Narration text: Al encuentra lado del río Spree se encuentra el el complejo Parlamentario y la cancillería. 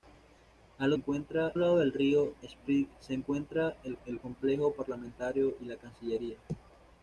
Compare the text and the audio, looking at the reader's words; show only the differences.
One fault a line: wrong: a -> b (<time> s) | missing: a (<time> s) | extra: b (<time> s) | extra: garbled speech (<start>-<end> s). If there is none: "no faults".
no faults